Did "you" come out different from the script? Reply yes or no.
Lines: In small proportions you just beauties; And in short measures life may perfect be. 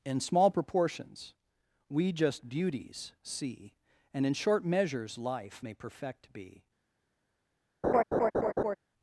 yes